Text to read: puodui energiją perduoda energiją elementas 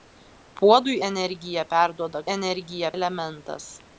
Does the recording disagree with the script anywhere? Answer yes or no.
no